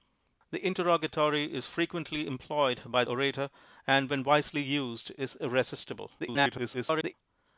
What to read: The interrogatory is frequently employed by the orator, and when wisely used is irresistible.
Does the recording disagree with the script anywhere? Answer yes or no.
yes